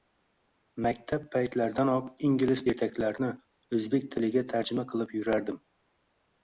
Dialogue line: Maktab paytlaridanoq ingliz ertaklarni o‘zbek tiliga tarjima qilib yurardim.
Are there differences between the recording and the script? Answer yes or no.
no